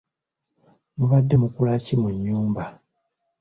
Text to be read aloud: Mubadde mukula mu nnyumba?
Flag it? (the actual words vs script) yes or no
yes